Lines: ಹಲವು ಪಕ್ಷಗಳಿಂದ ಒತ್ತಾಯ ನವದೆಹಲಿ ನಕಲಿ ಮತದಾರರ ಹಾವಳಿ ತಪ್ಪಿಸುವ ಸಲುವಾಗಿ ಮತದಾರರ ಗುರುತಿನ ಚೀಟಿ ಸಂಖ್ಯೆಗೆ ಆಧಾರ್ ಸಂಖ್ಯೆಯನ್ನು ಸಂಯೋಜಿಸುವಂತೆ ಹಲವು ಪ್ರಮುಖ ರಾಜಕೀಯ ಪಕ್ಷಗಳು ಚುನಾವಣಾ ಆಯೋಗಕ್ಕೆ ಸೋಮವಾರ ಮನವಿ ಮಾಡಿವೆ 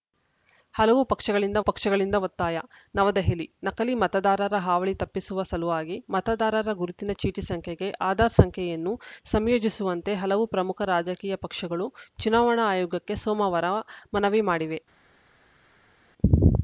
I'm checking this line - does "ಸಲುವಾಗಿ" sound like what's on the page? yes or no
yes